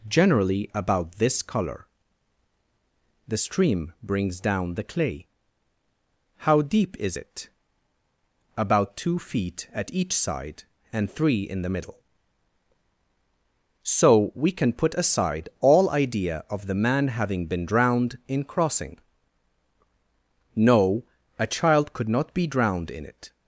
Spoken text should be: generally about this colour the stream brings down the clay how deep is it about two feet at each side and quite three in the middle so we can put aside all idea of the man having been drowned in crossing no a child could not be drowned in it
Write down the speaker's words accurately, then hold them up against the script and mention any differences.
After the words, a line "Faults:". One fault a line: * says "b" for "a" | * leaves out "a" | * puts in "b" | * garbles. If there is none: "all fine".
generally about this colour the stream brings down the clay how deep is it about two feet at each side and three in the middle so we can put aside all idea of the man having been drowned in crossing no a child could not be drowned in it
Faults:
* leaves out "quite"